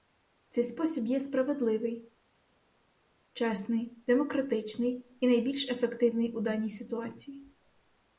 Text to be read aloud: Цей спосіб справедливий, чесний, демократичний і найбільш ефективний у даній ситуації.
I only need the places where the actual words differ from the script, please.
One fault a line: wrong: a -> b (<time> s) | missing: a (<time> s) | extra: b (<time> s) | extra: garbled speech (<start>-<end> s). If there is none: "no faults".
extra: є (1.0 s)